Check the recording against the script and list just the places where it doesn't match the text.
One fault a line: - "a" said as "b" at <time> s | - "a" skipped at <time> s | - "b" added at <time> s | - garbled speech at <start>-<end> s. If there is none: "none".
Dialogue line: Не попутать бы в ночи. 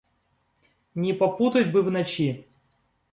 none